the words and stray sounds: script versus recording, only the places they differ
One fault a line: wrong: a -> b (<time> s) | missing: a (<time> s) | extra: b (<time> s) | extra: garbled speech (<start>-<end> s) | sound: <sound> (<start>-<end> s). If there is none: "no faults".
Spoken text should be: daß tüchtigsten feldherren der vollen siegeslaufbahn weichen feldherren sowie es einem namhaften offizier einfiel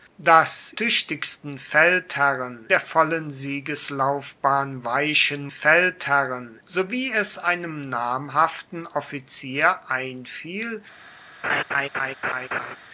sound: laugh (11.4-12.8 s)